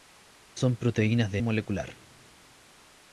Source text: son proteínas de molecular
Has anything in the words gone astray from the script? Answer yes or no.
no